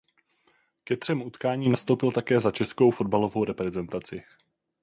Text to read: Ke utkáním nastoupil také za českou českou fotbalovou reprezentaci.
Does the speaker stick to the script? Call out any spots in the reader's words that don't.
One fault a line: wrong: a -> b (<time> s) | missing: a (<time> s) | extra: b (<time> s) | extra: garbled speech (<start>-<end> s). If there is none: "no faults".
extra: třem (1.0 s)
missing: českou (2.9 s)